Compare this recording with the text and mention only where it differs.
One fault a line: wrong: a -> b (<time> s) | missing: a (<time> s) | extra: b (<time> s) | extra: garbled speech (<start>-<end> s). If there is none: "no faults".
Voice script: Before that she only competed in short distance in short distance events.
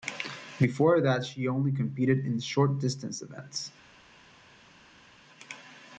missing: in short distance (3.2 s)